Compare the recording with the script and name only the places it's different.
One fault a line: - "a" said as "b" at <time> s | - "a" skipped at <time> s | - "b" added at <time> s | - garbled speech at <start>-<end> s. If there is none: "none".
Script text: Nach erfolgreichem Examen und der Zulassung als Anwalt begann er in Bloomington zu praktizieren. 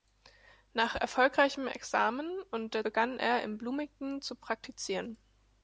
- "Zulassung als Anwalt" skipped at 2.9 s